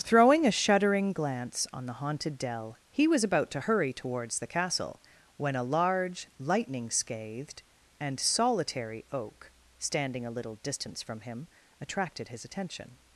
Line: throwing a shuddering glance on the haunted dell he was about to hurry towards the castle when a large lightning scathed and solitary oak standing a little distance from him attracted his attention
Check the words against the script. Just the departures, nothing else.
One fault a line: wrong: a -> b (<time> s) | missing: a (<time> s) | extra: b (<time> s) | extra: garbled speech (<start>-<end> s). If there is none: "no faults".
no faults